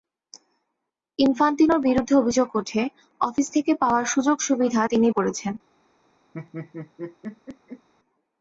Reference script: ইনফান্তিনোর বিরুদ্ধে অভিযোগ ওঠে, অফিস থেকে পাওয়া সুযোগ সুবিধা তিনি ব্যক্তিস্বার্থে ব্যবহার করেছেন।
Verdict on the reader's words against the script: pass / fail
fail